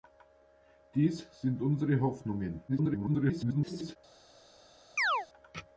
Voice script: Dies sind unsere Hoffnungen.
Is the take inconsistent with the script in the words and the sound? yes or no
yes